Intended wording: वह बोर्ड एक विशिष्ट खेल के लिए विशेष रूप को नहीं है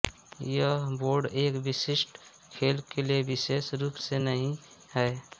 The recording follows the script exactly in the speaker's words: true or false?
false